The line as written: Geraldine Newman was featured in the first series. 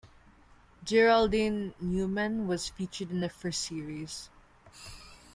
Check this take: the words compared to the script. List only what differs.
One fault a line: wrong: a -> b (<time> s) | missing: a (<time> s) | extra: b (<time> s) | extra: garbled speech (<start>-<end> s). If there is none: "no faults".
no faults